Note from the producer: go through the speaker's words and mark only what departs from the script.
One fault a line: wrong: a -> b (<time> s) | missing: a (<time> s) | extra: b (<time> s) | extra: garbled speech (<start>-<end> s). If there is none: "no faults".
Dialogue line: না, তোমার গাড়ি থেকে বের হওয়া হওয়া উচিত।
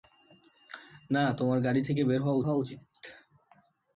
no faults